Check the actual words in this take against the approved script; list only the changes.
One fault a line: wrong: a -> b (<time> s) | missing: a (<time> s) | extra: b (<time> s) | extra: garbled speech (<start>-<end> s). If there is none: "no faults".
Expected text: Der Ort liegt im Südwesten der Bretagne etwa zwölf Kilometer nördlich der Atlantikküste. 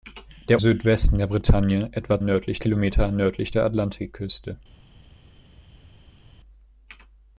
missing: Ort liegt im (0.6 s)
wrong: zwölf -> nördlich (2.2 s)